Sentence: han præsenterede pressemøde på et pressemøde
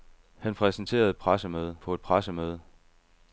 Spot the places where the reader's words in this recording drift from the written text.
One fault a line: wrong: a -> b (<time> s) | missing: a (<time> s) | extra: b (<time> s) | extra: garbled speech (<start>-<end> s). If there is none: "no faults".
no faults